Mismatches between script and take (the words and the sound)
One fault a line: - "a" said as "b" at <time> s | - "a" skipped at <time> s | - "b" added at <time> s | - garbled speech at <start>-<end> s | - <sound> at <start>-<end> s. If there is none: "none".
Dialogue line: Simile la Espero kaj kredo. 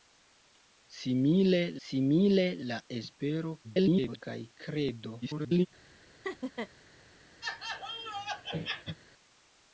- "simile" added at 1.9 s
- garbled speech at 3.6-4.2 s
- garbled speech at 5.2-5.7 s
- laugh at 6.2-6.7 s
- laugh at 7.4-9.0 s